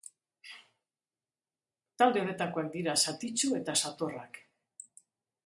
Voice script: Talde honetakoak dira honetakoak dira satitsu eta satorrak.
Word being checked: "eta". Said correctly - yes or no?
yes